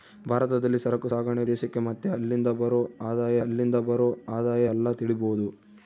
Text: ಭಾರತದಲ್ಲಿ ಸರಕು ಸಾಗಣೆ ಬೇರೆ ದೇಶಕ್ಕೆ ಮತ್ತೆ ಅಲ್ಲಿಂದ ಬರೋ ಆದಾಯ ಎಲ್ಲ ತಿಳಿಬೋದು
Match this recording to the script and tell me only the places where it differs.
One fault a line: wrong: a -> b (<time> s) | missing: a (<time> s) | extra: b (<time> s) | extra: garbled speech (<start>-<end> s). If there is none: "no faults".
missing: ಬೇರೆ (1.4 s)
extra: ಅಲ್ಲಿಂದ ಬರೋ ಆದಾಯ (3.4 s)